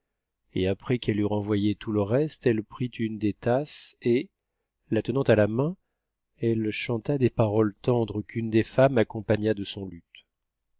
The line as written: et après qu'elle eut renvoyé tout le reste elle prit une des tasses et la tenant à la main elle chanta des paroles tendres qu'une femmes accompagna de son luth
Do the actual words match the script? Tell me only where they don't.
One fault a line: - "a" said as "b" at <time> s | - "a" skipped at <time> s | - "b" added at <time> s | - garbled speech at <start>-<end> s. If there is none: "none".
- "des" added at 8.5 s